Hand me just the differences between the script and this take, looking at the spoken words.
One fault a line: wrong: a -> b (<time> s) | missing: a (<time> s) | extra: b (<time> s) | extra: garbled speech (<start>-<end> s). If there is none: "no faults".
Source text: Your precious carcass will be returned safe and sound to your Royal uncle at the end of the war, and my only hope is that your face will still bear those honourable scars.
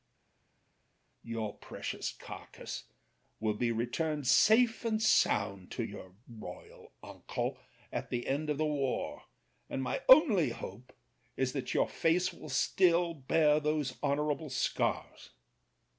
no faults